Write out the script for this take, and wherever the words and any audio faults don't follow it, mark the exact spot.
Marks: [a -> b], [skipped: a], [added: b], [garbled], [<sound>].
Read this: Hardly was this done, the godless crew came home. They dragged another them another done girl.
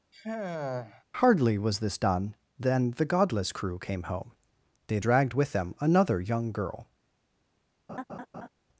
[sigh] Hardly was this done, [added: than] the godless crew came home. They dragged [another -> with] them another [done -> young] girl. [laugh]